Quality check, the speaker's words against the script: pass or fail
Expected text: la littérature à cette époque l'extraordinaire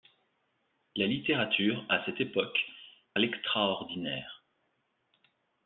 pass